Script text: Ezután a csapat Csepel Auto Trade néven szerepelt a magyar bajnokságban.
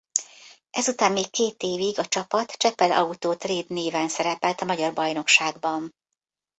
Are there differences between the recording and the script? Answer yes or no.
yes